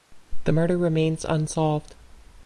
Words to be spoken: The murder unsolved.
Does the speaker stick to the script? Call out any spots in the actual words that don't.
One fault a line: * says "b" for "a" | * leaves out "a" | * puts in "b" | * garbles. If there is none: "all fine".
* puts in "remains"